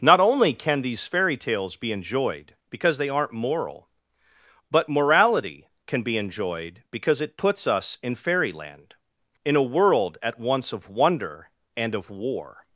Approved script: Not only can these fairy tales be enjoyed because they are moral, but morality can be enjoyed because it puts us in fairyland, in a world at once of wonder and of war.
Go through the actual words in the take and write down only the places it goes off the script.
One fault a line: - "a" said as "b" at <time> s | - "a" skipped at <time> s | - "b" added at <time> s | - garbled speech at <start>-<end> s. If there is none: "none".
- "are" said as "aren't" at 3.1 s